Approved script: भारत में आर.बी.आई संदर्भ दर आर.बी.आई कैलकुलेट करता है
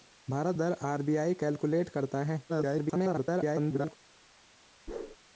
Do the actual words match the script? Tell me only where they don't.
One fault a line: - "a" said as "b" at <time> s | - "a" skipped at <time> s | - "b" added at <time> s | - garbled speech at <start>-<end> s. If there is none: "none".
- "में आर.बी.आई संदर्भ" skipped at 0.6 s
- garbled speech at 2.5-4.0 s